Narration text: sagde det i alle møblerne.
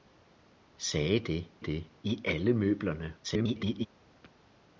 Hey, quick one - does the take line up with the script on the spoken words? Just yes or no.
no